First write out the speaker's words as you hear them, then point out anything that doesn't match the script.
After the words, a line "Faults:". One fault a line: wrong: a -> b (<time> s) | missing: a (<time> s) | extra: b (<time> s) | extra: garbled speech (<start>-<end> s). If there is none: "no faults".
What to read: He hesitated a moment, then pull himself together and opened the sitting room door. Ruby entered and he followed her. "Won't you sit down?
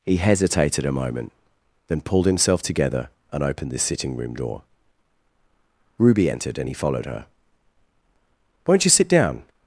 He hesitated a moment, then pulled himself together and opened the sitting room door. Ruby entered and he followed her. "Won't you sit down?
Faults:
wrong: pull -> pulled (2.0 s)